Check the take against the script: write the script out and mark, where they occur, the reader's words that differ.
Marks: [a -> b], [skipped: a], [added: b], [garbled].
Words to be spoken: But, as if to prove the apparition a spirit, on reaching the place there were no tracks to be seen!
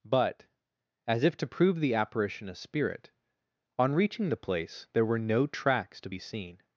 But, as if to prove the apparition a spirit, on reaching the place there were no tracks to be seen!